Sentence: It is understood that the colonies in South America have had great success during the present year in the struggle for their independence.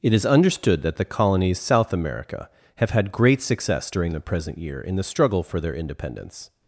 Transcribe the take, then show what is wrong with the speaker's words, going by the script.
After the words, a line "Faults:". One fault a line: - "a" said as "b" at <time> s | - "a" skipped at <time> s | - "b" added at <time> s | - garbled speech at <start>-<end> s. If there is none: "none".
It is understood that the colonies South America have had great success during the present year in the struggle for their independence.
Faults:
- "in" skipped at 1.6 s